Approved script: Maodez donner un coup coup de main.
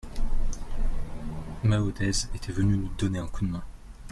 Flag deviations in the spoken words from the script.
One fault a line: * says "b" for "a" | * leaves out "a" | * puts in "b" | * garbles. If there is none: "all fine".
* puts in "était venu nous"
* leaves out "coup"